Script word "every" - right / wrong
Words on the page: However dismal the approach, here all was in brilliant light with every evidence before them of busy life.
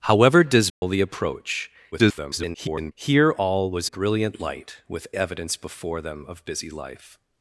wrong